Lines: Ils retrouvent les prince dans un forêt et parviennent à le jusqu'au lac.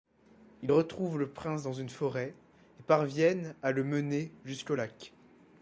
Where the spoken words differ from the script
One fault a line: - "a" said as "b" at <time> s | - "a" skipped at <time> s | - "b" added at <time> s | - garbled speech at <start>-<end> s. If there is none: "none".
- "les" said as "le" at 1.2 s
- "un" said as "une" at 1.7 s
- "mener" added at 3.8 s